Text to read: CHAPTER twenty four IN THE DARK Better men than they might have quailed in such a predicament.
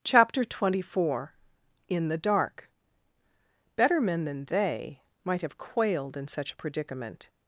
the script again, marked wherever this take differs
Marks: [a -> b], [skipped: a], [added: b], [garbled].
CHAPTER twenty four IN THE DARK Better men than they might have quailed in such a predicament.